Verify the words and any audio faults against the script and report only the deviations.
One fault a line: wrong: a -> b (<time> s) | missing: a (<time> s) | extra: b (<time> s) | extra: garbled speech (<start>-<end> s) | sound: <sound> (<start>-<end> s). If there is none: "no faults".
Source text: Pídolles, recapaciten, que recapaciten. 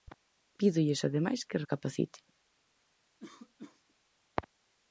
wrong: recapaciten -> ademais (1.1 s)
sound: cough (3.2-3.8 s)